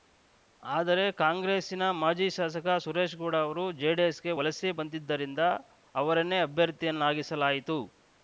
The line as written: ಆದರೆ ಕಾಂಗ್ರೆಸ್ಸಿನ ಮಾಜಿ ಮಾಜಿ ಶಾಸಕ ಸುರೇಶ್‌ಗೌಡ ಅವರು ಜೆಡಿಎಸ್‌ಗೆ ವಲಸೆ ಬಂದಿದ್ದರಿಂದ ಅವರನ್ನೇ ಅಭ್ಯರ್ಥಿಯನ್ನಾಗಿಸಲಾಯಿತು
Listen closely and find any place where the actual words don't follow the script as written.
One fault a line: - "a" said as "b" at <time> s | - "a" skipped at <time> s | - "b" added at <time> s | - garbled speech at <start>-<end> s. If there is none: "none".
- "ಮಾಜಿ" skipped at 2.3 s